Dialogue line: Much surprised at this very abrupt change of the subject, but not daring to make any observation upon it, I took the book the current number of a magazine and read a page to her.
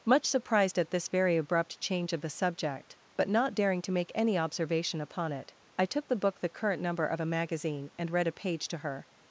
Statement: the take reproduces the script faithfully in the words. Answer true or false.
true